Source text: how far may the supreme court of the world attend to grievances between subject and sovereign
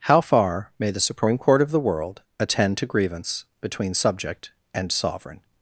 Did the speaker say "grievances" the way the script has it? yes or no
no